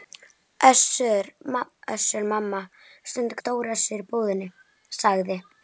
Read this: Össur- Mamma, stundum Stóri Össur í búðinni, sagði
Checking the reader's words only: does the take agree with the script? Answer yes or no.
yes